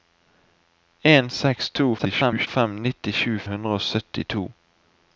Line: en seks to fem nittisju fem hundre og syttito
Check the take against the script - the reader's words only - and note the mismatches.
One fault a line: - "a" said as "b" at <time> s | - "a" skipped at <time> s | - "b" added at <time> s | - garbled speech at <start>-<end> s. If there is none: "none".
- garbled speech at 2.0-2.5 s
- "fem" skipped at 3.4 s